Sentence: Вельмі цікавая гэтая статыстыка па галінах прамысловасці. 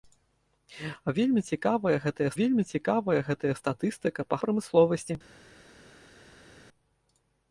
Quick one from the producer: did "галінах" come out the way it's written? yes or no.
no